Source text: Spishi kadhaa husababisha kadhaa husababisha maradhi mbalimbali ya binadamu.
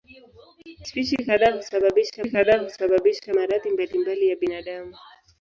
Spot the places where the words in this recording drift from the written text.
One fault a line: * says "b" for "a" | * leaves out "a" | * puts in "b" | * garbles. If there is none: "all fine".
all fine